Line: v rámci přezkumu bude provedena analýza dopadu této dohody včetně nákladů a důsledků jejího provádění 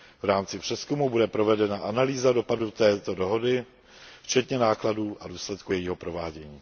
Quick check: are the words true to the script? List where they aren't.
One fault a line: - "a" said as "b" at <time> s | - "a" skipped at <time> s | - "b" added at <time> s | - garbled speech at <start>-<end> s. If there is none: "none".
none